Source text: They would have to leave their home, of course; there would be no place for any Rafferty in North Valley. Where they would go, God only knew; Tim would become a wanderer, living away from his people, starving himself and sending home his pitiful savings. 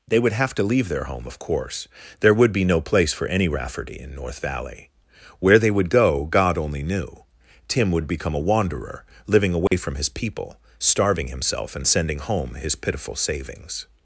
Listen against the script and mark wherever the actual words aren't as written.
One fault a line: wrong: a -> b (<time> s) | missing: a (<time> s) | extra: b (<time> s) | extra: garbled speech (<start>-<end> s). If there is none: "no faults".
no faults